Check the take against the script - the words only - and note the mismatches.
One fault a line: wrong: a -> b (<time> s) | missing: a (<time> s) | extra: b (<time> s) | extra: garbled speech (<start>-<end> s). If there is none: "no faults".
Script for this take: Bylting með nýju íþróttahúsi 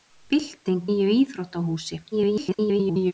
missing: með (0.8 s)
extra: garbled speech (2.1-3.1 s)